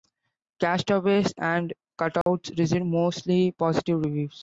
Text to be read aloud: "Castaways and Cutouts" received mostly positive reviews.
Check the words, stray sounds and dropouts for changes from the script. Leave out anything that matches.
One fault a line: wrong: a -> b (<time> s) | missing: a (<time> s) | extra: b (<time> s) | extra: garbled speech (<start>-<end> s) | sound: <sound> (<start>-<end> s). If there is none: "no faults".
sound: dropout (2.2-2.3 s)